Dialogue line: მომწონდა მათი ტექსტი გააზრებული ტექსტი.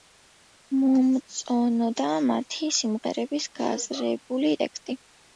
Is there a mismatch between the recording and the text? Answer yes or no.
yes